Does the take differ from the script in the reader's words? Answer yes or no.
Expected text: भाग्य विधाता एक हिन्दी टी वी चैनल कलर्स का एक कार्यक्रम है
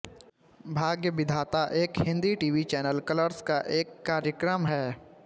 no